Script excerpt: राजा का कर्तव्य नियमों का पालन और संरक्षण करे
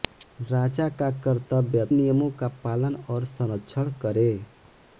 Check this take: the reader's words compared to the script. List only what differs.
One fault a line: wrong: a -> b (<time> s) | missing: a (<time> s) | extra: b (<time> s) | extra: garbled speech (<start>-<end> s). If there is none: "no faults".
no faults